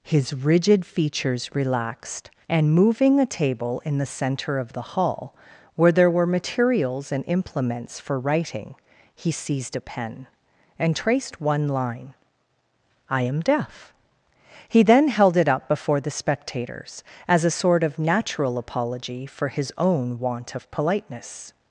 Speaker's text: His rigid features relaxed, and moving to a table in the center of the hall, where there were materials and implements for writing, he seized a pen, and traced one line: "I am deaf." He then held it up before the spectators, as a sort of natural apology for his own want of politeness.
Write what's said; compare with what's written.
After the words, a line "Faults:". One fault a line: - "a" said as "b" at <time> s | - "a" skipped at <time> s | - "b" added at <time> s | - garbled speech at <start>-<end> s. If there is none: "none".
His rigid features relaxed, and moving a table in the center of the hall, where there were materials and implements for writing, he seized a pen, and traced one line: "I am deaf." He then held it up before the spectators, as a sort of natural apology for his own want of politeness.
Faults:
- "to" skipped at 3.2 s